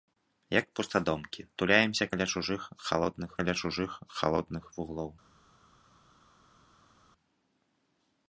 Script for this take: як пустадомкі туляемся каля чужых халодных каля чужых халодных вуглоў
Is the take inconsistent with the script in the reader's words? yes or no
no